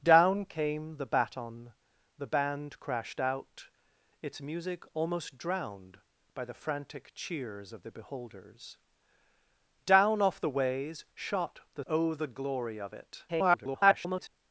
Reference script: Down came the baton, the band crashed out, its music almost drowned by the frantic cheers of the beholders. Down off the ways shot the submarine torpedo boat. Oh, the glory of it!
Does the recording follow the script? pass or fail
fail